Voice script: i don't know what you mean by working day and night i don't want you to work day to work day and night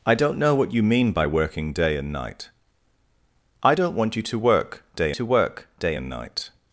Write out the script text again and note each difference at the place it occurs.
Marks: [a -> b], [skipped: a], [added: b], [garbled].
i don't know what you mean by working day and night i don't want you to work day to work day and night